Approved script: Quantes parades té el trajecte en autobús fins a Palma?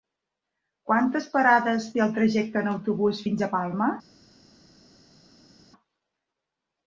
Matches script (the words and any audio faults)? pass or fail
pass